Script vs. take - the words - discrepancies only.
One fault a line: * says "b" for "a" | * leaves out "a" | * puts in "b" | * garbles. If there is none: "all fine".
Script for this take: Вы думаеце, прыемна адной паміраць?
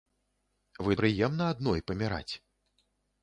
* leaves out "думаеце"